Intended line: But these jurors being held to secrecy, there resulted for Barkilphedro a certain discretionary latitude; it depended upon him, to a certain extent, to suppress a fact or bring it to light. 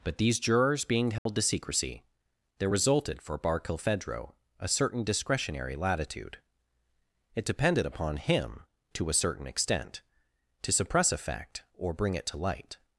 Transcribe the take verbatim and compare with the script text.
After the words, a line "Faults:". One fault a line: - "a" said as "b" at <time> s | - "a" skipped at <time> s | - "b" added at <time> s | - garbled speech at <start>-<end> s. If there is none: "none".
But these jurors being held to secrecy, there resulted for Barkilphedro a certain discretionary latitude; it depended upon him, to a certain extent, to suppress a fact or bring it to light.
Faults:
none